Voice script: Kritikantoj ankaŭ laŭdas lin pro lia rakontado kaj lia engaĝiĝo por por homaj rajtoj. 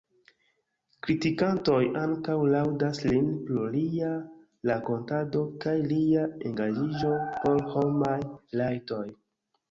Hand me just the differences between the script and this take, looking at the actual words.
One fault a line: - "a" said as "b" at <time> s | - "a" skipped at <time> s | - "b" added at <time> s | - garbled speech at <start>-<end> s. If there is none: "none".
- "por" skipped at 7.6 s